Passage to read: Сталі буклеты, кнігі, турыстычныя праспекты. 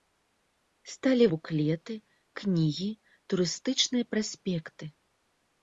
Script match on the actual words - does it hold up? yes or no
yes